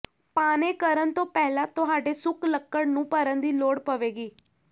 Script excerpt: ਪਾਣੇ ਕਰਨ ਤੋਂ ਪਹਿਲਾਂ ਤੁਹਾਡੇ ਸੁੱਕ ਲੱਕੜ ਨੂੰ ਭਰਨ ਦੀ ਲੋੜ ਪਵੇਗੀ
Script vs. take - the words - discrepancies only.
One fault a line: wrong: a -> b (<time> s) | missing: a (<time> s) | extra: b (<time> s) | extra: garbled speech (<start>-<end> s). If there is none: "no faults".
no faults